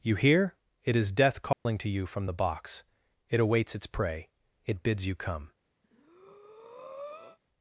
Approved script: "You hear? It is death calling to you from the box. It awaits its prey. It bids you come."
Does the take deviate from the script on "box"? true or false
false